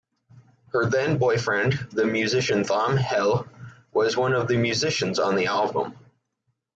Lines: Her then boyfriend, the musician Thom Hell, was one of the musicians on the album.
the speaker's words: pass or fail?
pass